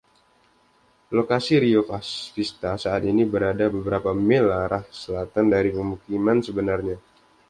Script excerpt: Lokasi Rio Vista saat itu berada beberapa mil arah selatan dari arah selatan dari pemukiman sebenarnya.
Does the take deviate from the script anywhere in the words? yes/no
yes